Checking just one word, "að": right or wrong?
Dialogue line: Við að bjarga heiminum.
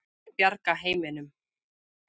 right